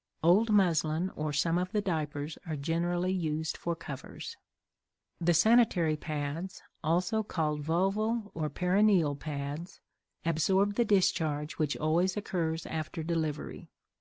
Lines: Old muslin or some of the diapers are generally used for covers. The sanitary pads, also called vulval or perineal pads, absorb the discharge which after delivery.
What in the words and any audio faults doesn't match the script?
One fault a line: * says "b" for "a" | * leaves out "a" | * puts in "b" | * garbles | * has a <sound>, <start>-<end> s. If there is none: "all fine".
* puts in "always occurs"